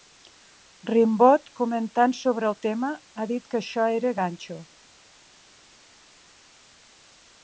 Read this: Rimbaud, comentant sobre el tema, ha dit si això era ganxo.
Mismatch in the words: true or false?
true